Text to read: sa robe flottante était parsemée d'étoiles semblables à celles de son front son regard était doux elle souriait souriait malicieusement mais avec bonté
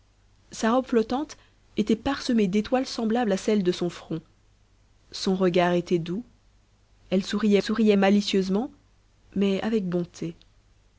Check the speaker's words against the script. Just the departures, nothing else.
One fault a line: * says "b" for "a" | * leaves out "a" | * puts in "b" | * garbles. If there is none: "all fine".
all fine